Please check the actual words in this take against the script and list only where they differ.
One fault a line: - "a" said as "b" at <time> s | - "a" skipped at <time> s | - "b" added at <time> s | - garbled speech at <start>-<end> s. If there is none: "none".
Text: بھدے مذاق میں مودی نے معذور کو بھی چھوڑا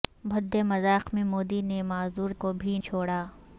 none